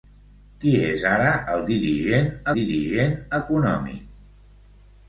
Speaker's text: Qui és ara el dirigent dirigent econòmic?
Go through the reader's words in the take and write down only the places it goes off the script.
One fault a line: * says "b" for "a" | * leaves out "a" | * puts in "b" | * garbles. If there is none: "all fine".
all fine